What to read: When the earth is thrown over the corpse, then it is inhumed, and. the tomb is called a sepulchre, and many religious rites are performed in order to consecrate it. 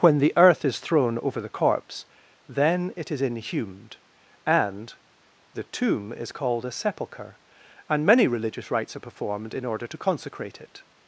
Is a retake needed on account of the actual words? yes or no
no